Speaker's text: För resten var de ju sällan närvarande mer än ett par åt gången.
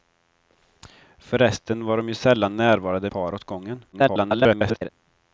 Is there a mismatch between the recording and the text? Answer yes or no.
yes